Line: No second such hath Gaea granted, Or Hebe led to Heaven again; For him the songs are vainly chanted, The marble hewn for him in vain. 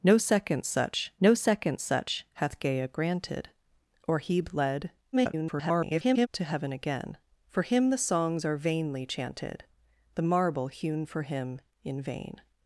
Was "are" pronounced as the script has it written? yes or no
yes